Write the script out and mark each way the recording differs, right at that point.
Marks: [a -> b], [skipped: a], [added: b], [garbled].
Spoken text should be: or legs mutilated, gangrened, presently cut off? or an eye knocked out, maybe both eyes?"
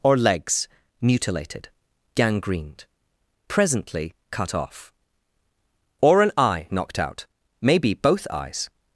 or legs mutilated, gangrened, presently cut off? or an eye knocked out, maybe both eyes?"